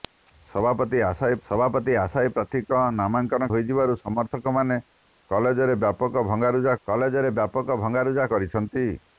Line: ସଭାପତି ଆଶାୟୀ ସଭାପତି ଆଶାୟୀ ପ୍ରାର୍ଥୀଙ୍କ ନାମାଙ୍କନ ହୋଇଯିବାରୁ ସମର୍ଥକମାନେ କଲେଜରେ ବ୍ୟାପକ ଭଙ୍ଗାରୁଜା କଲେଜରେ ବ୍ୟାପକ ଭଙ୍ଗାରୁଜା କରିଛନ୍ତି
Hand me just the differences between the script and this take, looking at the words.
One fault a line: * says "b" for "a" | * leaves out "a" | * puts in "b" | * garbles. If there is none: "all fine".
all fine